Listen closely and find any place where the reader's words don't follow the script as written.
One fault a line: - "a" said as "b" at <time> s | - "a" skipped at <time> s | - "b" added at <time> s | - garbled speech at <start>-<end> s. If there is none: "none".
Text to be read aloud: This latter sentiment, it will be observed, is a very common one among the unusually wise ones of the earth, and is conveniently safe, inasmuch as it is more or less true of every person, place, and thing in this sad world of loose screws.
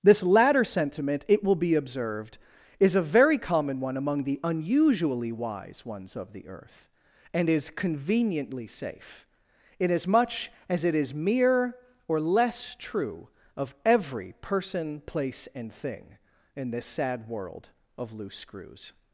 - "more" said as "mere" at 11.1 s